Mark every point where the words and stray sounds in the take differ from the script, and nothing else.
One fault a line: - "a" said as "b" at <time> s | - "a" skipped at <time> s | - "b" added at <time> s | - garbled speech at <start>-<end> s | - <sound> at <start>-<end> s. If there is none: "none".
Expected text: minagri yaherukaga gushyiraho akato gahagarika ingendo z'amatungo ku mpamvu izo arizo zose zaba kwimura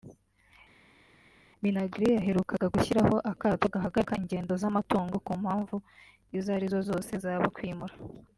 none